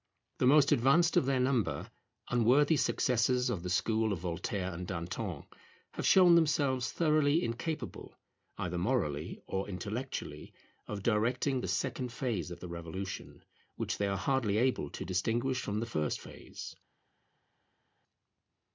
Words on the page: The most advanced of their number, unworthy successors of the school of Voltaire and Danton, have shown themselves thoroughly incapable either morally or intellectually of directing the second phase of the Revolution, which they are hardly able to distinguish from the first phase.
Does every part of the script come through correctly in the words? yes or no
yes